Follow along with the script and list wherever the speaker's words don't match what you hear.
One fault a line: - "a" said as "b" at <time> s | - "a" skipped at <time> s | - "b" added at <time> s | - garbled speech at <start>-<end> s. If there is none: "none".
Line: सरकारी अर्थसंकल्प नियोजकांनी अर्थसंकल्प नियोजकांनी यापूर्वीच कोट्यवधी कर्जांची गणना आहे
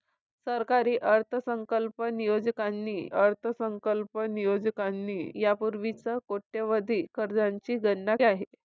none